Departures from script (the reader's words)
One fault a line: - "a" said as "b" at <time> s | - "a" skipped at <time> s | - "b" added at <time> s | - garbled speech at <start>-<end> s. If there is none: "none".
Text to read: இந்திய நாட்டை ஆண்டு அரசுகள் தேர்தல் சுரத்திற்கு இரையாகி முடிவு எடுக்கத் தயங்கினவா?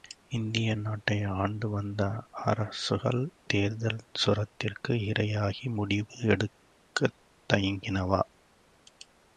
- "வந்த" added at 1.7 s